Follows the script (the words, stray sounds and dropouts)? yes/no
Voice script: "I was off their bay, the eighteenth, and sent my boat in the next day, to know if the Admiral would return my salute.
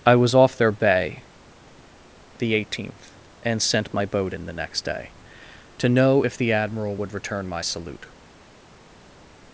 yes